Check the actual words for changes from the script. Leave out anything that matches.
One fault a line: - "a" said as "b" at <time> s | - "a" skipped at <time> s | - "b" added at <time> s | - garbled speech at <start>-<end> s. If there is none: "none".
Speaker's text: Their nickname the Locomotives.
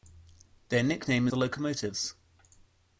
none